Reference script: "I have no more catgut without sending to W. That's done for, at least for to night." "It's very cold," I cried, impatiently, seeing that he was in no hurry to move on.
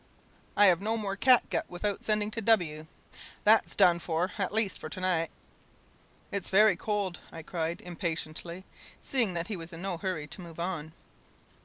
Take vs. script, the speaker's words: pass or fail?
pass